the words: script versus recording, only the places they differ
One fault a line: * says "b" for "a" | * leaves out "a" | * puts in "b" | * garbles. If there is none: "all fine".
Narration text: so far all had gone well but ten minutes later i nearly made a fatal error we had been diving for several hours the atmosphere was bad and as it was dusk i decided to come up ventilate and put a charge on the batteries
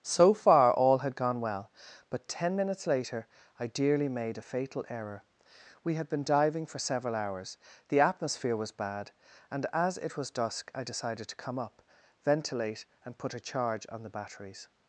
* says "dearly" for "nearly"